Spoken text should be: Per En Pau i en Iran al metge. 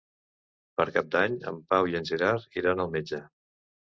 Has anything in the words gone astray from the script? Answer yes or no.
yes